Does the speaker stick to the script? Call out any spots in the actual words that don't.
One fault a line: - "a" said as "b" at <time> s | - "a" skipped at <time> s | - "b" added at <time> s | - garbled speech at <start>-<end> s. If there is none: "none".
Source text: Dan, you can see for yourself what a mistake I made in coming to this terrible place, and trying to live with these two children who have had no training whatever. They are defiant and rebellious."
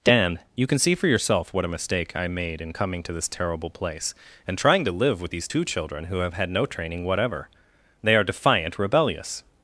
- "and" skipped at 8.8 s